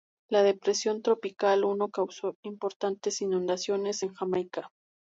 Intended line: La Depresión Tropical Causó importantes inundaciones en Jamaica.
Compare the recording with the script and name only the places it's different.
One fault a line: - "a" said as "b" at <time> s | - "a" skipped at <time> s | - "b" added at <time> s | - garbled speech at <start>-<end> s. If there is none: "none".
- "Uno" added at 1.6 s